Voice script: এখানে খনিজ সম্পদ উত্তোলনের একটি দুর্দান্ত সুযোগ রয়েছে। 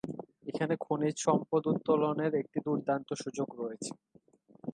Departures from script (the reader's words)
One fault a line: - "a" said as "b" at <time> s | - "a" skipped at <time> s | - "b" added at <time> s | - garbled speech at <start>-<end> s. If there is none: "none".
none